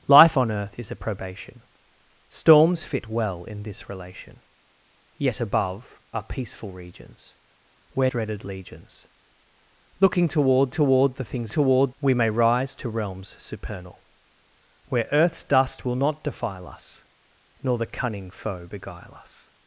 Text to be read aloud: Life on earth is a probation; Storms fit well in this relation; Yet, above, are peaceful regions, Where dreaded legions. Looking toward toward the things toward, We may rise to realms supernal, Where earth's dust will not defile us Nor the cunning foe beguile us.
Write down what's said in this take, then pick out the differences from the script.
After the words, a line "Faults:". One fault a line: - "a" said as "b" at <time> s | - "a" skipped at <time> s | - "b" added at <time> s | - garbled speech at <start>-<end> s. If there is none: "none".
Life on earth is a probation; Storms fit well in this relation; Yet, above, are peaceful regions, Where dreaded legions. Looking toward toward the things toward, We may rise to realms supernal, Where earth's dust will not defile us Nor the cunning foe beguile us.
Faults:
none